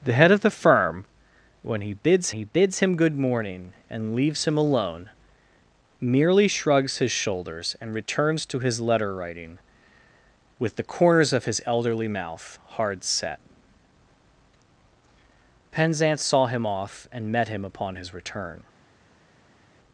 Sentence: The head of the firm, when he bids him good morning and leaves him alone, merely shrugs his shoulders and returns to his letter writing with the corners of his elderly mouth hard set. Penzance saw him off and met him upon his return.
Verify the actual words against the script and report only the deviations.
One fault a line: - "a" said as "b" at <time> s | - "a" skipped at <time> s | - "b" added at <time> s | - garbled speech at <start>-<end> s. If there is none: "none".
- "he bids" added at 2.3 s